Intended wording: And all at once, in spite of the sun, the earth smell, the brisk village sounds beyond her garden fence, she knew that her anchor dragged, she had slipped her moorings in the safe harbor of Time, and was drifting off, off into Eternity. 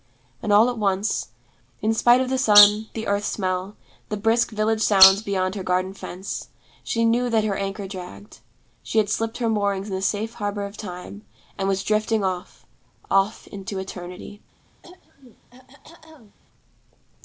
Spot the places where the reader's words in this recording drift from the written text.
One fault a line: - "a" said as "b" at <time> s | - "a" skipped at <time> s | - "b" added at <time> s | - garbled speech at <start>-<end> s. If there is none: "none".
none